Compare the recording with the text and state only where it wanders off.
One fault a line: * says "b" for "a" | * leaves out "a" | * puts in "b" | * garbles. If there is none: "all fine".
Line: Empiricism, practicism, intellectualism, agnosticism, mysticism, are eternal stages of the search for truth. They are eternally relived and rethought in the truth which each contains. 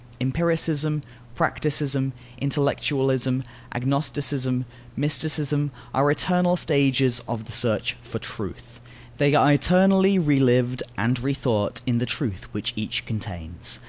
all fine